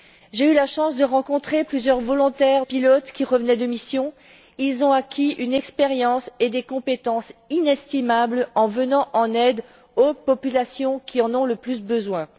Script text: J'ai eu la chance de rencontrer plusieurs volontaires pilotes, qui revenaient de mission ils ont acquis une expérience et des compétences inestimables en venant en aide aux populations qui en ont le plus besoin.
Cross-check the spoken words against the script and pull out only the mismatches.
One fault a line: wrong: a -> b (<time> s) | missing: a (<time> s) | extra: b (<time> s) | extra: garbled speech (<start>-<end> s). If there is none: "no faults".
no faults